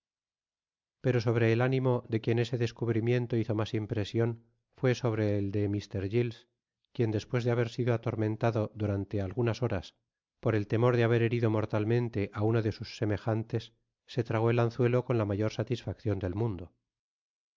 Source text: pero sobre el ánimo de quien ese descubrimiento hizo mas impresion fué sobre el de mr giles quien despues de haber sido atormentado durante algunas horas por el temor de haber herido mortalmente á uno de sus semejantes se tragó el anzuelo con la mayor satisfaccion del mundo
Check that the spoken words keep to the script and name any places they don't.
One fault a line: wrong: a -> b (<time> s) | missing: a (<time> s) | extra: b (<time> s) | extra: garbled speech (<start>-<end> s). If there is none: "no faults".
no faults